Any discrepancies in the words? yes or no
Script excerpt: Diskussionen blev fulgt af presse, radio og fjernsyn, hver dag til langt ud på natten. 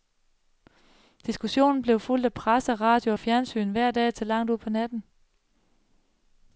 no